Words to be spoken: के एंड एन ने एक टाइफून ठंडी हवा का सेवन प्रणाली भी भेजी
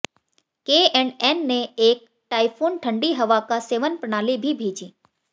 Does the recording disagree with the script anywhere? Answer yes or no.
no